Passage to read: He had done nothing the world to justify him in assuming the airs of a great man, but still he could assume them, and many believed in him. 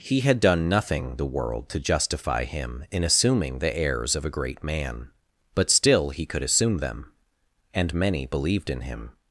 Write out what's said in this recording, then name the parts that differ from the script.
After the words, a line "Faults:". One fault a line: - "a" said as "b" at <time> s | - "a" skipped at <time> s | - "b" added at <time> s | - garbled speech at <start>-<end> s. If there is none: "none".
He had done nothing the world to justify him in assuming the airs of a great man, but still he could assume them, and many believed in him.
Faults:
none